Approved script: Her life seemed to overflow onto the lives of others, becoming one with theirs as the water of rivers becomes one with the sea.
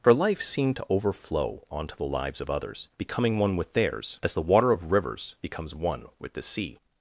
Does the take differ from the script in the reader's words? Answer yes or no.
no